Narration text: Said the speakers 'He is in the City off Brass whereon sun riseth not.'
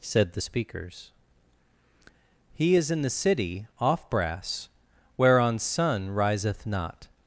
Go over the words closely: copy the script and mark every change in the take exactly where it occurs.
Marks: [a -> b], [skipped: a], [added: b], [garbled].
Said the speakers 'He is in the City off Brass whereon sun riseth not.'